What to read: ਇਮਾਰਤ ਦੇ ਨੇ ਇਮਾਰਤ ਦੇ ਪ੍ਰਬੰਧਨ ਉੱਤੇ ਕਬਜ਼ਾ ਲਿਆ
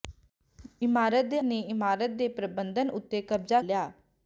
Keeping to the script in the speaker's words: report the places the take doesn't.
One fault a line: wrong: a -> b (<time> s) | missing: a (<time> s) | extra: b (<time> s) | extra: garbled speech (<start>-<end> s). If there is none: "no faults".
no faults